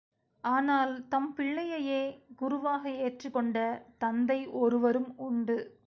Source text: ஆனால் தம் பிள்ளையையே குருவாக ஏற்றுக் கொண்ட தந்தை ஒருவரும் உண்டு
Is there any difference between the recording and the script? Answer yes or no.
no